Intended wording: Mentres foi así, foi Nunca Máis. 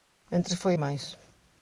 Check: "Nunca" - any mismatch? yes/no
yes